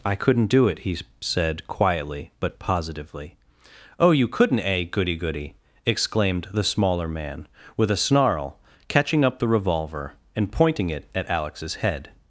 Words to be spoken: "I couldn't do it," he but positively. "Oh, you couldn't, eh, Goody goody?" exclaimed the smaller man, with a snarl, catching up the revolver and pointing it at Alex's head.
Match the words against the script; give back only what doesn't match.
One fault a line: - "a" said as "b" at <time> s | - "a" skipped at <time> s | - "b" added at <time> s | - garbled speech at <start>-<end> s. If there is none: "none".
- "said quietly" added at 1.2 s